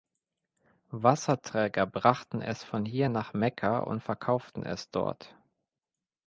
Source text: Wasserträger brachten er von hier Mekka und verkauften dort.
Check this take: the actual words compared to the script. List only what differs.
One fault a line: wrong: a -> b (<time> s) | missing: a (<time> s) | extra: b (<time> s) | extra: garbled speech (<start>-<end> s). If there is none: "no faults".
wrong: er -> es (2.4 s)
extra: nach (3.0 s)
extra: es (4.6 s)